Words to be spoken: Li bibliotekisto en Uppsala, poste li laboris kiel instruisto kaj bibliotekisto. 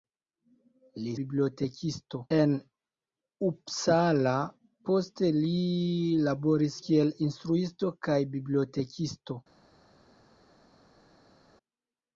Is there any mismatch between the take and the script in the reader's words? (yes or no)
no